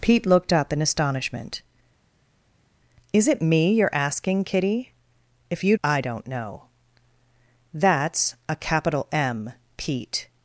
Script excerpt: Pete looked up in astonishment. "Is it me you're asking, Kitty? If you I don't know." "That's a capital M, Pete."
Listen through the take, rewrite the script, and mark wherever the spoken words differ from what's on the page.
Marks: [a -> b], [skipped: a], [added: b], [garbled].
Pete looked up in astonishment. "Is it me you're asking, Kitty? If you I don't know." "That's a capital M, Pete."